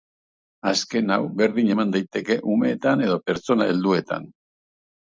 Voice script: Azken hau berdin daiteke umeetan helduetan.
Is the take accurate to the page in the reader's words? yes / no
no